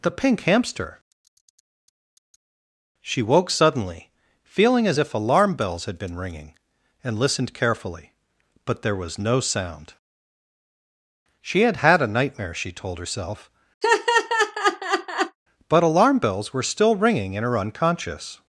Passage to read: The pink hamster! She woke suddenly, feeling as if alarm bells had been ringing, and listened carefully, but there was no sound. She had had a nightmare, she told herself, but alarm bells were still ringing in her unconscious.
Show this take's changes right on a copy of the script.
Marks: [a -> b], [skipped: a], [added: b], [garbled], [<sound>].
The pink hamster! She woke suddenly, feeling as if alarm bells had been ringing, and listened carefully, but there was no sound. She had had a nightmare, she told herself, [laugh] but alarm bells were still ringing in her unconscious.